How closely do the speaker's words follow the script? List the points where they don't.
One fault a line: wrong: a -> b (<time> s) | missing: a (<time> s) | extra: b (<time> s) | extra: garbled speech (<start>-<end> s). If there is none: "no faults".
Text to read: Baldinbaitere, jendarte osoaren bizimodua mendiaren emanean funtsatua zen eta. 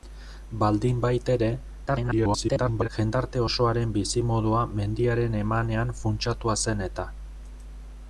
extra: garbled speech (1.9-2.9 s)